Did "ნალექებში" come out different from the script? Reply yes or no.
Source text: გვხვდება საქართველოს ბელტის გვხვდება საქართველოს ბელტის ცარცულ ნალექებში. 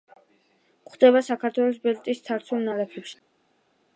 no